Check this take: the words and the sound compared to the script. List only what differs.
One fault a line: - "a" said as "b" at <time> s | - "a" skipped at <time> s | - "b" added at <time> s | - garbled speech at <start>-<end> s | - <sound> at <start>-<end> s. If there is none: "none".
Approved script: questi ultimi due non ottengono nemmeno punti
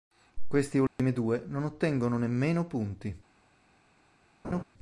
- dropout at 0.9-1.0 s
- laugh at 4.4-4.6 s